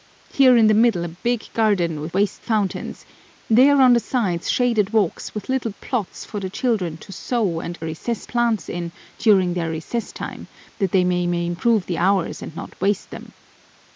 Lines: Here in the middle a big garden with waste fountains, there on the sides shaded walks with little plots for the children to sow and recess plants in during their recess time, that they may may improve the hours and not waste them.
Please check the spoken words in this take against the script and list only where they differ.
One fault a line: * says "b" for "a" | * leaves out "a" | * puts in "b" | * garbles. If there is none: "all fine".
all fine